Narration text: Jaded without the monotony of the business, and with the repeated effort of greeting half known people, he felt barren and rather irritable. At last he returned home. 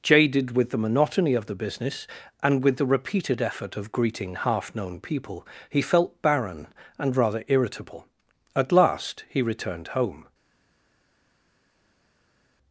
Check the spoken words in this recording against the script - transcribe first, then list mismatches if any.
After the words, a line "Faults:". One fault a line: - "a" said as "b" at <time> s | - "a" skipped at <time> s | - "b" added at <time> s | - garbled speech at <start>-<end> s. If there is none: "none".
Jaded with the monotony of the business, and with the repeated effort of greeting half known people, he felt barren and rather irritable. At last he returned home.
Faults:
- "without" said as "with" at 0.6 s